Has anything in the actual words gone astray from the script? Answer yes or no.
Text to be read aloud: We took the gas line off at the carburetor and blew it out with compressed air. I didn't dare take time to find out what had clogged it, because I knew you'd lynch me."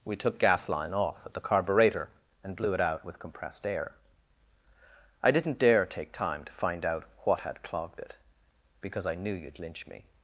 yes